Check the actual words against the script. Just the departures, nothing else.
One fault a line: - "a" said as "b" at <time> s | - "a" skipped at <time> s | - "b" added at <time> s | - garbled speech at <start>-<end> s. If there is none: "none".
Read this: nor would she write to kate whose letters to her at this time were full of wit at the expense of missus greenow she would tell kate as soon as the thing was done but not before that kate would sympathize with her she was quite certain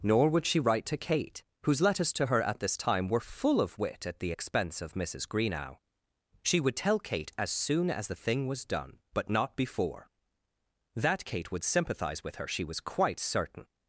none